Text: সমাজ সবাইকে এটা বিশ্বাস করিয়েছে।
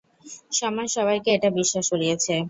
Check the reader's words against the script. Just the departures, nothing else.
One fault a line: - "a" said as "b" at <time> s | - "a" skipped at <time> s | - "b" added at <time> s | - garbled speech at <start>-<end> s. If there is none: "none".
none